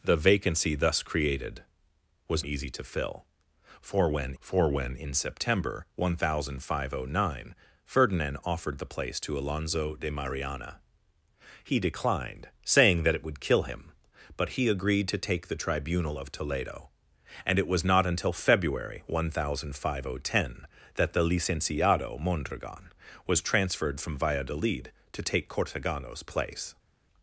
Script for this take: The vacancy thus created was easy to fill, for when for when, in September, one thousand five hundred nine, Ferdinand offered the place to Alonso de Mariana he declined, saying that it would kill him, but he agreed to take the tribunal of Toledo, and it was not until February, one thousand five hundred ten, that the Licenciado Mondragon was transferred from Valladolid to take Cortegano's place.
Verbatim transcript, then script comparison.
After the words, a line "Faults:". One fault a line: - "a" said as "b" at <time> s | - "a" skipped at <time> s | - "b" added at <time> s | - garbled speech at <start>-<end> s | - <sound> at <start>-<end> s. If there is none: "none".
The vacancy thus created was easy to fill, for when for when, in September, one thousand five hundred nine, Ferdinand offered the place to Alonso de Mariana he declined, saying that it would kill him, but he agreed to take the tribunal of Toledo, and it was not until February, one thousand five hundred ten, that the Licenciado Mondragon was transferred from Valladolid to take Cortegano's place.
Faults:
none